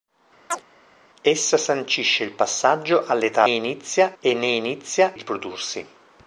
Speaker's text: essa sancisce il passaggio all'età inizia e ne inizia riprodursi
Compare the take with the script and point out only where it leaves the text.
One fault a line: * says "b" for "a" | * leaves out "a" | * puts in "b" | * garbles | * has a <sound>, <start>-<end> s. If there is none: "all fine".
* has a chirp, 0.5-0.6 s